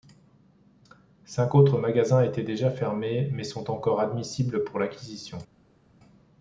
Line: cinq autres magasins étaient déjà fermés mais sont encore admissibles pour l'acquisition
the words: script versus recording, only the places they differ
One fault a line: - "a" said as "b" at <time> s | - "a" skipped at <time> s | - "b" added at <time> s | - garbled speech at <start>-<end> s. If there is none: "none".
none